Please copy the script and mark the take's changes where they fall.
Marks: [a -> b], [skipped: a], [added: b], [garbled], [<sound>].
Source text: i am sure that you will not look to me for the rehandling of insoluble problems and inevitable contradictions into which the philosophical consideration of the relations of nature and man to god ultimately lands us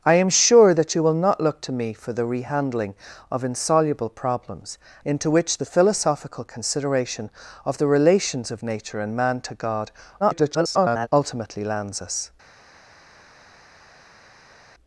i am sure that you will not look to me for the rehandling of insoluble problems [skipped: and inevitable contradictions] into which the philosophical consideration of the relations of nature and man to god [garbled] ultimately lands us